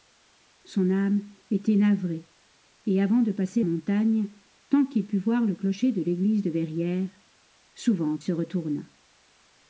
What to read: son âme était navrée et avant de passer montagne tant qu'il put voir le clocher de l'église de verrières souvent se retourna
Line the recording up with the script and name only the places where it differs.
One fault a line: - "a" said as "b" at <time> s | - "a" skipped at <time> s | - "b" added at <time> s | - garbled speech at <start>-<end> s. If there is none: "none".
none